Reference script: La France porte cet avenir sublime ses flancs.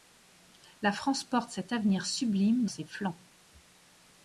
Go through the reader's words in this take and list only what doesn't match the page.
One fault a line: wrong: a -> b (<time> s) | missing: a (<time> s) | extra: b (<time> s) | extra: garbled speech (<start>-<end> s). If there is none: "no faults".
no faults